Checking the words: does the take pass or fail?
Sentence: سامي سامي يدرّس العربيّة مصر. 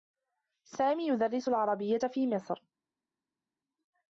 fail